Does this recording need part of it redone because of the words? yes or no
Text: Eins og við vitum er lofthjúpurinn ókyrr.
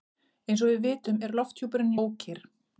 no